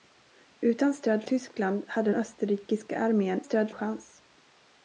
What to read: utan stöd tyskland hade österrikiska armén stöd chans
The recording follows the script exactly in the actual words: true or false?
true